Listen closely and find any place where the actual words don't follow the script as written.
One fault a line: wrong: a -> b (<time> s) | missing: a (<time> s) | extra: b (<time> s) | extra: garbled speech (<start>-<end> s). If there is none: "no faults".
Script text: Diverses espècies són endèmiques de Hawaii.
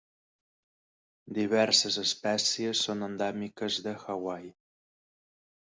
no faults